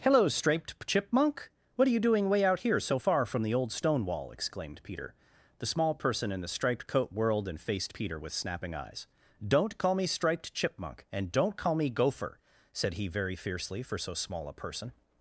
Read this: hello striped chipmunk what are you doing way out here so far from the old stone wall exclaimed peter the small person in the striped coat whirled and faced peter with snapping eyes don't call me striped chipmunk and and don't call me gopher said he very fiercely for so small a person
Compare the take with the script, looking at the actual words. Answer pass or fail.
fail